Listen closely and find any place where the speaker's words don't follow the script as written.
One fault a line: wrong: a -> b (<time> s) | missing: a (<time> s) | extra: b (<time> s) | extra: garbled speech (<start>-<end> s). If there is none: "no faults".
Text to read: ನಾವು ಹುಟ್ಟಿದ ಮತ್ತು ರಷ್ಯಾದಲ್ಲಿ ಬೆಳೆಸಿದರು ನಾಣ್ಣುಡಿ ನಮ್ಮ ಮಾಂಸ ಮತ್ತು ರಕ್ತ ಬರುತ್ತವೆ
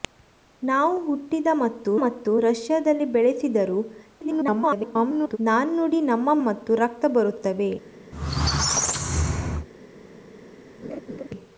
extra: ಮತ್ತು (2.0 s)
extra: garbled speech (4.2-5.4 s)
missing: ಮಾಂಸ (6.3 s)